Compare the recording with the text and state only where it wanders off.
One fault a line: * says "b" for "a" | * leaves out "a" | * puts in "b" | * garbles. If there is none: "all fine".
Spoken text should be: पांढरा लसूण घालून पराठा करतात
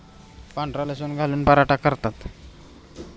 all fine